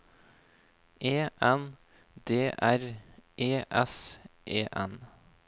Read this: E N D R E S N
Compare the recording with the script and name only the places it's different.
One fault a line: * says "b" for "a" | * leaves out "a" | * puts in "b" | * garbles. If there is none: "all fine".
* puts in "E"